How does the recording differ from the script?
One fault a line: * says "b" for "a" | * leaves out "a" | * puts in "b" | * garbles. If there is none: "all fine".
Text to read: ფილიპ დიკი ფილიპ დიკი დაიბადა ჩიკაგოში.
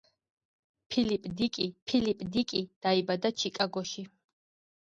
all fine